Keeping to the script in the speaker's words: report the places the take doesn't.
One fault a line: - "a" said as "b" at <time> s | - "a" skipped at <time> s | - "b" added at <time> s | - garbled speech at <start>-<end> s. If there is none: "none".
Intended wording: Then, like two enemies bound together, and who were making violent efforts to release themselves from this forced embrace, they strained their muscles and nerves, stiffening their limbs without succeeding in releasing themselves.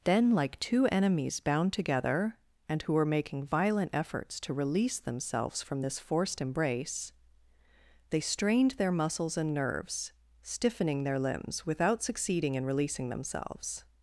none